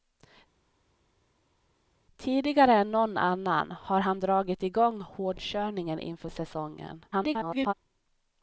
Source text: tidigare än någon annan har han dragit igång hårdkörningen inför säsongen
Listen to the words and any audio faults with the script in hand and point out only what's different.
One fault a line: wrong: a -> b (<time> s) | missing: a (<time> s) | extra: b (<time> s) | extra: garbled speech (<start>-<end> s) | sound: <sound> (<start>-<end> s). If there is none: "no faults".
extra: garbled speech (7.1-7.7 s)